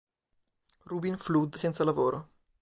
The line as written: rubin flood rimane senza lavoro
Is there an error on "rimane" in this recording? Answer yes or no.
yes